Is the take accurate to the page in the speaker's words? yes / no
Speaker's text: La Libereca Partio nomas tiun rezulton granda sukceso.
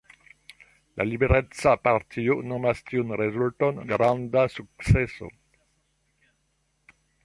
yes